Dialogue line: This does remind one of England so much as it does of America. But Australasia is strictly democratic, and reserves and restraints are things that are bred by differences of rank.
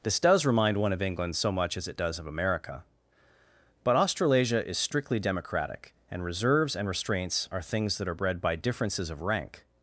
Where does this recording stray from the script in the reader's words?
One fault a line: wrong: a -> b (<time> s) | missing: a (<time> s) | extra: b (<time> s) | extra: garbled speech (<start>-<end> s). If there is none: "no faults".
no faults